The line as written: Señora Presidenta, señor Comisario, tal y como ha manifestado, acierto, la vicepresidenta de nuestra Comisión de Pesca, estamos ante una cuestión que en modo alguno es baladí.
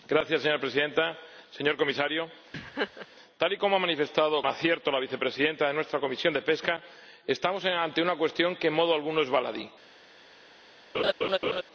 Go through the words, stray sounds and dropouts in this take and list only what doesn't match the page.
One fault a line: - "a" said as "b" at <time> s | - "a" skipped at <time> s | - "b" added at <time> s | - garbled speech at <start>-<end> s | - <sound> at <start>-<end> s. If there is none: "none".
- laugh at 2.5-3.1 s
- laugh at 10.9-11.6 s